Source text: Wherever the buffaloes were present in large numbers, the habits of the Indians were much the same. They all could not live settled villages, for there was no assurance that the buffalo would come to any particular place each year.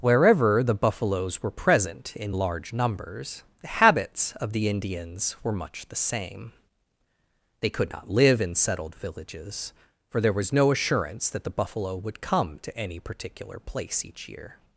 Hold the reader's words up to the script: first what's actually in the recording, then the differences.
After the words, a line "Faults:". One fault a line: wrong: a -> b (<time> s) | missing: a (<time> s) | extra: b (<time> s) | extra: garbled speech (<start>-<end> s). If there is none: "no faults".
Wherever the buffaloes were present in large numbers, the habits of the Indians were much the same. They could not live in settled villages, for there was no assurance that the buffalo would come to any particular place each year.
Faults:
missing: all (7.7 s)
extra: in (8.4 s)